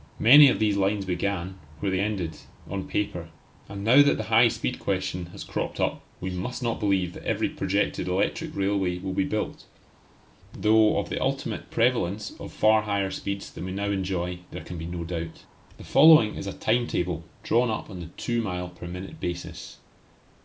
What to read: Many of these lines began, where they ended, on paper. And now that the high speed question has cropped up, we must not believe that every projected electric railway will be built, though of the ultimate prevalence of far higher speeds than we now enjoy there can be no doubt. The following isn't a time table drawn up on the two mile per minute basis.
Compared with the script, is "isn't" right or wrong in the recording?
wrong